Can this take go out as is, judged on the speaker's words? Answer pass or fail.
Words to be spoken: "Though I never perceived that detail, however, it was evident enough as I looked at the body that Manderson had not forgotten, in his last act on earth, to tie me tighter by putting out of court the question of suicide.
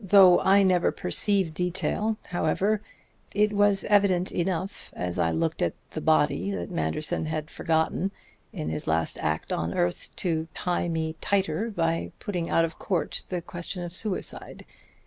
fail